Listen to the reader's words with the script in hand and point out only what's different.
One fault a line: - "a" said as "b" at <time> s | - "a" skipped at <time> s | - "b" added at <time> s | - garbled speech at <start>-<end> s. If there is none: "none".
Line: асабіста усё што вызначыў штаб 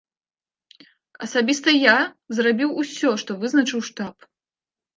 - "я зрабіў" added at 1.8 s